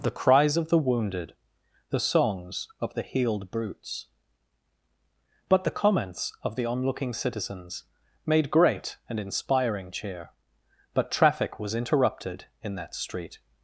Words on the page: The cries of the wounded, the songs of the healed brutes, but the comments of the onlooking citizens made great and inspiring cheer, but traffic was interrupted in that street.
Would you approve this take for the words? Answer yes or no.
yes